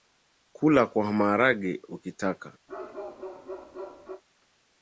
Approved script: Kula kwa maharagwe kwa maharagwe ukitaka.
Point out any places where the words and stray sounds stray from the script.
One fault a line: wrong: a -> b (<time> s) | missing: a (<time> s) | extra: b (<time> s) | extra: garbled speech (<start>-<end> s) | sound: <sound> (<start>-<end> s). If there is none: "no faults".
missing: kwa maharagwe (1.8 s)
sound: bark (2.7-4.2 s)